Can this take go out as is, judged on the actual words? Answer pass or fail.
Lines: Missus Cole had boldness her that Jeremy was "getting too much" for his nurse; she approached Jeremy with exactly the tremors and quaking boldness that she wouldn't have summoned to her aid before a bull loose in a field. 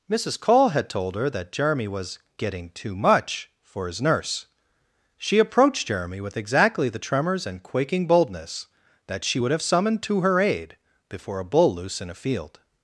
fail